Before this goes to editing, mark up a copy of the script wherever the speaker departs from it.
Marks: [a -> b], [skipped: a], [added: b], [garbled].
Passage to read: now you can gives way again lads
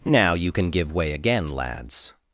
now you can [gives -> give] way again lads